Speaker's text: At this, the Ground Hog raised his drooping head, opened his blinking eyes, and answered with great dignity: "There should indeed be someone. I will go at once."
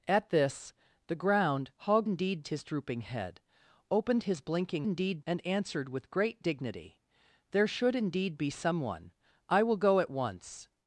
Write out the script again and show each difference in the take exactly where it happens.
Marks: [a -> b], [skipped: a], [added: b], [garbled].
At this, the Ground Hog [raised -> indeed] his drooping head, opened his blinking [eyes, -> indeed] and answered with great dignity: "There should indeed be someone. I will go at once."